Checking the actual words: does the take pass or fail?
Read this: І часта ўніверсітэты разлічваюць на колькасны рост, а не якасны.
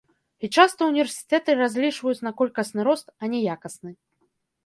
pass